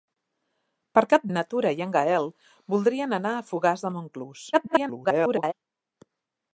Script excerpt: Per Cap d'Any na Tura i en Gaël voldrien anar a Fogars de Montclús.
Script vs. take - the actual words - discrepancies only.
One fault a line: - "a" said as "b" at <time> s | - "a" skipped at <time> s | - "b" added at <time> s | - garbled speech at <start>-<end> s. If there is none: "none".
- "d'Any" skipped at 1.3 s
- garbled speech at 4.5-5.5 s